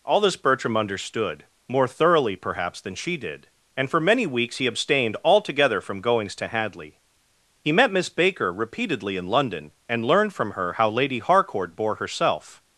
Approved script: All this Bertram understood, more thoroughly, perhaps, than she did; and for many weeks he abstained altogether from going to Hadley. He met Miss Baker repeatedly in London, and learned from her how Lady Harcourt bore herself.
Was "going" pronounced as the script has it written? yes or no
no